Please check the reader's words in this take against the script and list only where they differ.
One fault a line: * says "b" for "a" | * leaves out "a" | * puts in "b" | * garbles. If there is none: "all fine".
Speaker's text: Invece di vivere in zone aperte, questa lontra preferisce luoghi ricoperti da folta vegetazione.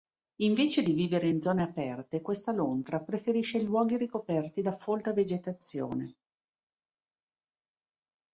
all fine